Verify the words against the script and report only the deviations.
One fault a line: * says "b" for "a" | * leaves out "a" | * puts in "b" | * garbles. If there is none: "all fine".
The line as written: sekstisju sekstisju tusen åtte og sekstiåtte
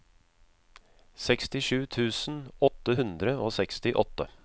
* leaves out "sekstisju"
* puts in "hundre"